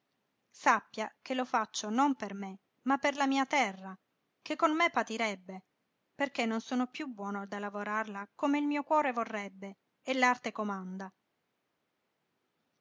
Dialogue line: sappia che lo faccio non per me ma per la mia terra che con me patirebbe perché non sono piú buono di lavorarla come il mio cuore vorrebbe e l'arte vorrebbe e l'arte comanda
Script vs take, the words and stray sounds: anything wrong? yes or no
yes